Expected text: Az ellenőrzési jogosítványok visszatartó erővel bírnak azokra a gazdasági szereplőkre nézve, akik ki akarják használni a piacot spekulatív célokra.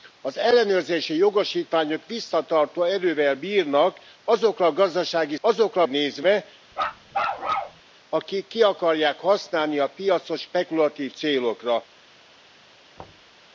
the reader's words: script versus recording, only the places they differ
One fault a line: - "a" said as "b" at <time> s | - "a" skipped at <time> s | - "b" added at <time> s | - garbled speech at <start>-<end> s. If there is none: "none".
- "szereplőkre" said as "azokra" at 5.4 s